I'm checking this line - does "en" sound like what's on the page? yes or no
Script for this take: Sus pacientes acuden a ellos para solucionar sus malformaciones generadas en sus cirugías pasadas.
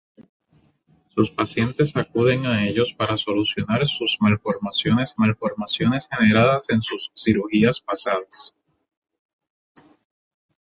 yes